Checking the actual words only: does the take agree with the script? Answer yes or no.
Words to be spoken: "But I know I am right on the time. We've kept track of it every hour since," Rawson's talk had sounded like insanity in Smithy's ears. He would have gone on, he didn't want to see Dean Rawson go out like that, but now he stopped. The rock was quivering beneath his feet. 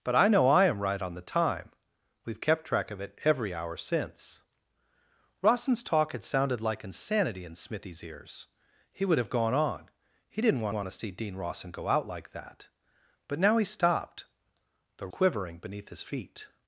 no